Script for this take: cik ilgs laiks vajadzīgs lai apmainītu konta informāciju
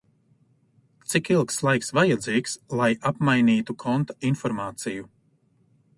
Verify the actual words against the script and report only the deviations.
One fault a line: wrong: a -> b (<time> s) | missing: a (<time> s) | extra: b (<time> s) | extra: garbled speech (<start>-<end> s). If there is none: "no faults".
no faults